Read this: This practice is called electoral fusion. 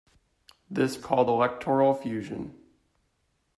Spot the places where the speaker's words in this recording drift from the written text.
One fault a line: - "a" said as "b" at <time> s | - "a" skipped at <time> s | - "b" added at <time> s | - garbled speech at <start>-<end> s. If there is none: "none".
- "practice is" skipped at 1.0 s